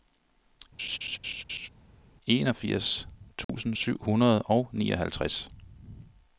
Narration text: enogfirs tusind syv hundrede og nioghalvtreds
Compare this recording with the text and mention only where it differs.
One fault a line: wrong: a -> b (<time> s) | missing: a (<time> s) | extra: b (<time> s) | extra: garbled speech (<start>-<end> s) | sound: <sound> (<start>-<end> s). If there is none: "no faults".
sound: laugh (0.8-1.7 s)
sound: dropout (3.4-3.5 s)